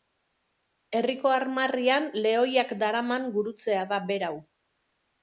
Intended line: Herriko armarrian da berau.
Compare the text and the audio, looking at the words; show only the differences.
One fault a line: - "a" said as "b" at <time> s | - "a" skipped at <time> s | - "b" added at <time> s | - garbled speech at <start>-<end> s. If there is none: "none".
- "lehoiak daraman gurutzea" added at 2.2 s